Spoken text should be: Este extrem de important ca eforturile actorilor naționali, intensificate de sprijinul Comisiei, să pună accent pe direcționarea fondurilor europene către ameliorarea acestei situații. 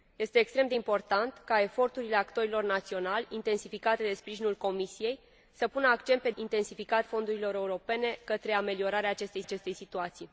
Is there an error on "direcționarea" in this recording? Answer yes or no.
yes